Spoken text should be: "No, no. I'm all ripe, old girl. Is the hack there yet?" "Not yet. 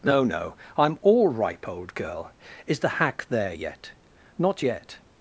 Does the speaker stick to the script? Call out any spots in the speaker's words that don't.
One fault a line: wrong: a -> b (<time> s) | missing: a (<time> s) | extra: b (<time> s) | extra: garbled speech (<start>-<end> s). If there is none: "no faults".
no faults